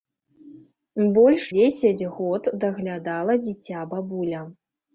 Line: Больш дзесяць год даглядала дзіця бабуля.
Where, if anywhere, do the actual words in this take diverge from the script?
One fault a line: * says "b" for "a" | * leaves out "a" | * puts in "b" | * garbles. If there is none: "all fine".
all fine